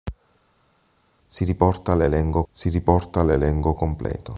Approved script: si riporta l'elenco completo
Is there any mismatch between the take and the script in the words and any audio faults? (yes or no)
yes